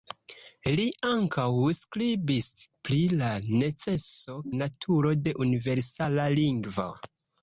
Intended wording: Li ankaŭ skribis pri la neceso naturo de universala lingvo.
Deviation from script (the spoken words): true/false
false